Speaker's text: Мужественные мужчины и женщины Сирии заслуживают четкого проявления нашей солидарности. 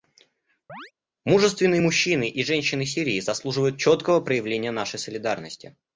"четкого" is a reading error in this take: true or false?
false